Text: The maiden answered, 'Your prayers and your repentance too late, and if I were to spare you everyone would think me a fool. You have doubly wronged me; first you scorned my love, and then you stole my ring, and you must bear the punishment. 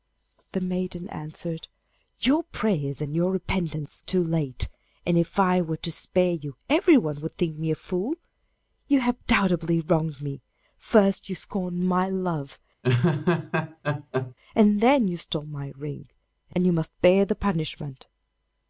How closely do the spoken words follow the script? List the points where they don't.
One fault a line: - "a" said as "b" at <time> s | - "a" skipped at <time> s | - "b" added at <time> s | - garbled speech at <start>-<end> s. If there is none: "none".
none